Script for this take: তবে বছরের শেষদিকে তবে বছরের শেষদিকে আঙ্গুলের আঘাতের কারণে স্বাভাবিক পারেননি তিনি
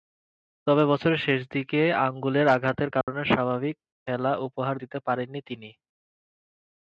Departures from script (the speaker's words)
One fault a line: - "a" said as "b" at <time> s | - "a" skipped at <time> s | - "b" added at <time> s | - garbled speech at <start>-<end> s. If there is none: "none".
- "তবে বছরের শেষদিকে" skipped at 1.8 s
- "খেলা উপহার দিতে" added at 4.1 s